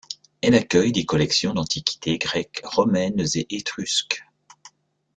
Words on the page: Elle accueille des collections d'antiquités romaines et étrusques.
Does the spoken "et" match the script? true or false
true